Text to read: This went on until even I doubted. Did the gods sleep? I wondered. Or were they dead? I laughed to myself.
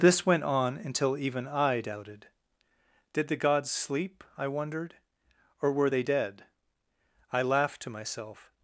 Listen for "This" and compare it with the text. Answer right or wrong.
right